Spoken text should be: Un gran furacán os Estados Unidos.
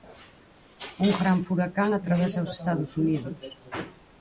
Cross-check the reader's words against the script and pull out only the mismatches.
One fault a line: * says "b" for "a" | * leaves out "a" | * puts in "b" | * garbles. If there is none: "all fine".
* puts in "atravesa"